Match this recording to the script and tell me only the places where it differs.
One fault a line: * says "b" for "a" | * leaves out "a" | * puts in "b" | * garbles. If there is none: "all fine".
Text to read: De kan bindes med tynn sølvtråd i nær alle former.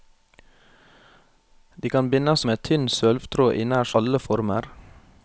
all fine